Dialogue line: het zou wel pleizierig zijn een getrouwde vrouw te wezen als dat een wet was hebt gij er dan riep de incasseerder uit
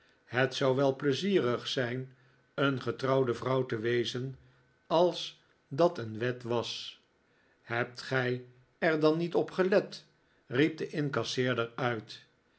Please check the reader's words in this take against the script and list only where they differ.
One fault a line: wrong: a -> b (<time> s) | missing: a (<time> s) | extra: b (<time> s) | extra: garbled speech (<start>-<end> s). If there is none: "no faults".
extra: niet op gelet (9.2 s)